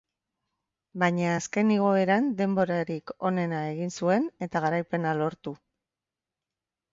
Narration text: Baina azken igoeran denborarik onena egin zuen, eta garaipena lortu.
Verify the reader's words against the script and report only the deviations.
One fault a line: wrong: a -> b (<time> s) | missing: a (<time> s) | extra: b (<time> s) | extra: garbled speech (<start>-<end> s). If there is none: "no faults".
no faults